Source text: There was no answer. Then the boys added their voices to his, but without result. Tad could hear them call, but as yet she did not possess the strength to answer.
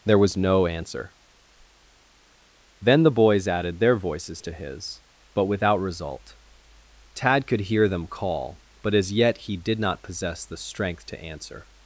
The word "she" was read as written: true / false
false